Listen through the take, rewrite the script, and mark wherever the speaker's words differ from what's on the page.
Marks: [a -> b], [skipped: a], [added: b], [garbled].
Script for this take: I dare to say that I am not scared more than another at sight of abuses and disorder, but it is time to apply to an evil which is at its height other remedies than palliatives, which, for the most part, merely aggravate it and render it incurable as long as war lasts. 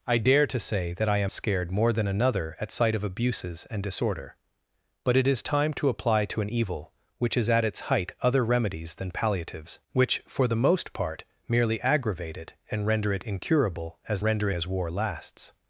I dare to say that I am [skipped: not] scared more than another at sight of abuses and disorder, but it is time to apply to an evil which is at its height other remedies than palliatives, which, for the most part, merely aggravate it and render it incurable as [long -> render] as war lasts.